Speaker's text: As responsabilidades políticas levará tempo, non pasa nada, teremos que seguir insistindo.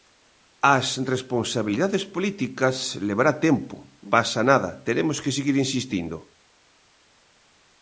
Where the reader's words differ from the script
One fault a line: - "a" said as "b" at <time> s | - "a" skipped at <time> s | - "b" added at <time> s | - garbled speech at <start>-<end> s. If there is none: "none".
- "non" skipped at 3.8 s